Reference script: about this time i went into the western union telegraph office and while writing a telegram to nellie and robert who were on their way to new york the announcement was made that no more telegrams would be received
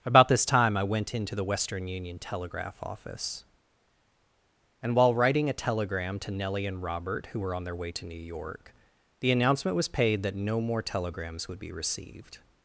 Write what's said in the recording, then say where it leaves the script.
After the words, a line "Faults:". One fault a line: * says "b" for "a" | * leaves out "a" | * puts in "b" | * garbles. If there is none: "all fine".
about this time i went into the western union telegraph office and while writing a telegram to nellie and robert who were on their way to new york the announcement was paid that no more telegrams would be received
Faults:
* says "paid" for "made"